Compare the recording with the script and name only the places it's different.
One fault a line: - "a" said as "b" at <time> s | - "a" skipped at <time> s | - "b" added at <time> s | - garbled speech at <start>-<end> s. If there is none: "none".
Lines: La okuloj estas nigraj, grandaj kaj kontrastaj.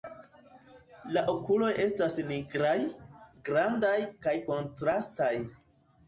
none